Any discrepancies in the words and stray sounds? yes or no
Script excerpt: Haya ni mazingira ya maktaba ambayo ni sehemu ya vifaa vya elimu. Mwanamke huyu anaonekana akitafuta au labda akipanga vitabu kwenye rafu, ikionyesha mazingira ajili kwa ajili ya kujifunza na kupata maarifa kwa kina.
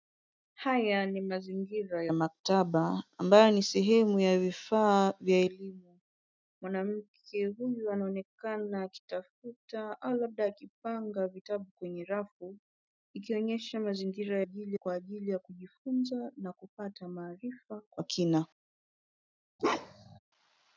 yes